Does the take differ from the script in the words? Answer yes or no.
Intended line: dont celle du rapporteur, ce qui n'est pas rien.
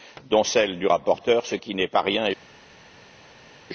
no